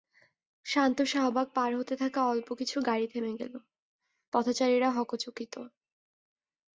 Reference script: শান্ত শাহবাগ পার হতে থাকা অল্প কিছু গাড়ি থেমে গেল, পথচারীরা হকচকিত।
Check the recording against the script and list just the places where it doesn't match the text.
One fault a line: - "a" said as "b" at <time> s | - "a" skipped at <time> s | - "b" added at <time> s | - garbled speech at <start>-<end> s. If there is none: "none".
none